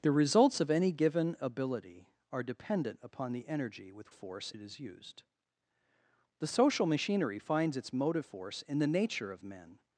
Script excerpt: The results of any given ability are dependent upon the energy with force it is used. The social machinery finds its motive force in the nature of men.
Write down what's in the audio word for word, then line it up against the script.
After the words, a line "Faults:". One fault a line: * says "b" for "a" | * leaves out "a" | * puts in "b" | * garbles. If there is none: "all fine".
The results of any given ability are dependent upon the energy with force it is used. The social machinery finds its motive force in the nature of men.
Faults:
all fine